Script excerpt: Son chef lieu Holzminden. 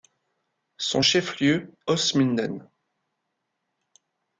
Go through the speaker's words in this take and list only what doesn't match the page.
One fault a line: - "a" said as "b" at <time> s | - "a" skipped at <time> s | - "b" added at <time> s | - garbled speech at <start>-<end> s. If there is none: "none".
none